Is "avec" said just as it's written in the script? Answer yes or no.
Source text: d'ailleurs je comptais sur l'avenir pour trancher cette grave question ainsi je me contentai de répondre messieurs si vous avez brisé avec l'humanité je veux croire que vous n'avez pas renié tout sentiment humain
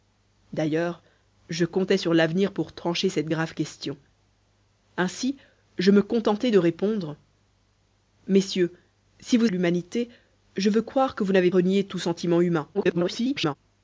no